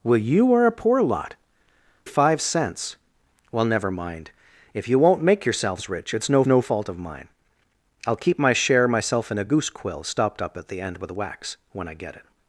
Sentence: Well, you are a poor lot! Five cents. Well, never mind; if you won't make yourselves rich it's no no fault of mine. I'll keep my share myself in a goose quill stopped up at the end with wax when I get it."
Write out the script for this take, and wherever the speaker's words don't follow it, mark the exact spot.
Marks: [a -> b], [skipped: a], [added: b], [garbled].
Well, you are a poor lot! Five cents. Well, never mind; if you won't make yourselves rich it's no no fault of mine. I'll keep my share myself in a goose quill stopped up at the end with wax when I get it."